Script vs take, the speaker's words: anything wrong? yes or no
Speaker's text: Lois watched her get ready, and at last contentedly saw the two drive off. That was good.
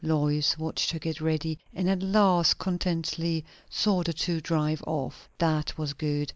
no